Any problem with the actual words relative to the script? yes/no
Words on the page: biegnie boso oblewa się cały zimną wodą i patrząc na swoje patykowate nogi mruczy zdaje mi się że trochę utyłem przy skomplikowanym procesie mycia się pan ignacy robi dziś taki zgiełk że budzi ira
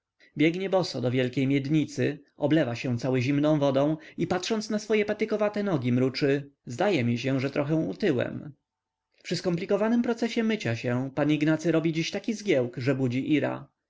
yes